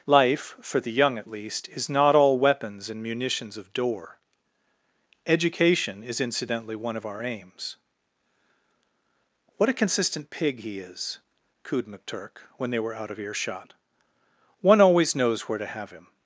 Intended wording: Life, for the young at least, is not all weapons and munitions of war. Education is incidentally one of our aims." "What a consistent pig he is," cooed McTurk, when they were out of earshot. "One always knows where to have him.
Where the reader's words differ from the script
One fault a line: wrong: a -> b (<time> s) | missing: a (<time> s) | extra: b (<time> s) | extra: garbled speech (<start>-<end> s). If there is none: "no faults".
wrong: war -> door (3.7 s)